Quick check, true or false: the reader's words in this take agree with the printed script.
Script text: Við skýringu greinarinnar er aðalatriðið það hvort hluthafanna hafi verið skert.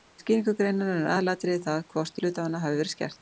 true